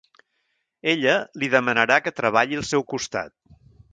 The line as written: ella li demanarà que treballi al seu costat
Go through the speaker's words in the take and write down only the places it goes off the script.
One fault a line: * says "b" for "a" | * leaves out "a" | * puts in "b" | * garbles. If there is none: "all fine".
all fine